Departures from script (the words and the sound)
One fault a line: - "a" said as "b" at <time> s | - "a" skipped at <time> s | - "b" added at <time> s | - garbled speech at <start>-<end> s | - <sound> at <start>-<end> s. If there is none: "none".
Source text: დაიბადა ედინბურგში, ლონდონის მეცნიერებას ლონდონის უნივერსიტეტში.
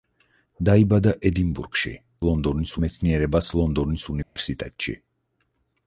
- dropout at 4.2-4.4 s